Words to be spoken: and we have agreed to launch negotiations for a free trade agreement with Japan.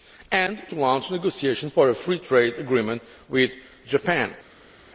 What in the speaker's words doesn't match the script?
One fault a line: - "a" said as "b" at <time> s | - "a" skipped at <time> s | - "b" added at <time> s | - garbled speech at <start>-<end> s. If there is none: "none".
- "we have agreed" skipped at 0.6 s